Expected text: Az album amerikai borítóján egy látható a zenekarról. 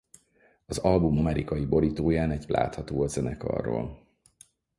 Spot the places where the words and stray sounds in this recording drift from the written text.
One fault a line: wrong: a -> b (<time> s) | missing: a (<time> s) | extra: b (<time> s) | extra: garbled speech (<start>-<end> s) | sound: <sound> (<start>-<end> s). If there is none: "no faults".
no faults